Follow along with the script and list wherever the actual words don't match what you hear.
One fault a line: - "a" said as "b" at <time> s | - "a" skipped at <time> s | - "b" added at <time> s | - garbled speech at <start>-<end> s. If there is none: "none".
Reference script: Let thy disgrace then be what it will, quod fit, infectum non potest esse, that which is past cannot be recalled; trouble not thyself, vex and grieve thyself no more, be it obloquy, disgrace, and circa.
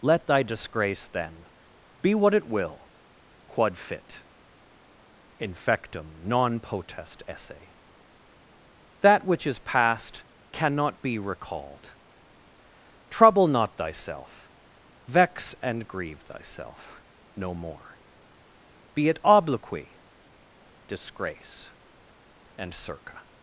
none